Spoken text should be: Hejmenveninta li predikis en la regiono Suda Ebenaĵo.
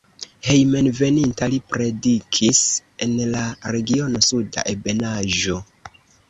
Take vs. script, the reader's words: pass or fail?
pass